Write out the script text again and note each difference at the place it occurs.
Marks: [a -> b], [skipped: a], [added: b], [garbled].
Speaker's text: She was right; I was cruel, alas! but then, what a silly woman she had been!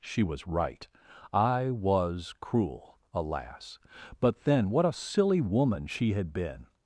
She was right; I was cruel, alas! but then, what a silly woman she had been!